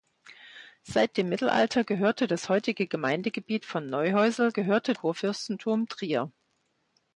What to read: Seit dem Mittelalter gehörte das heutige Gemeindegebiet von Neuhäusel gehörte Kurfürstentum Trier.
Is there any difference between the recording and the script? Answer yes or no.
no